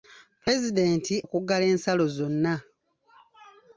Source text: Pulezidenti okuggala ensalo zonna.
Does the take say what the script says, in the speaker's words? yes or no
yes